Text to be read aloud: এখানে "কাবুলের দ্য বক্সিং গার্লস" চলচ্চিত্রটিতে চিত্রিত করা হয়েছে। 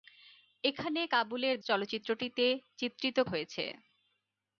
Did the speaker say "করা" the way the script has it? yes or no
no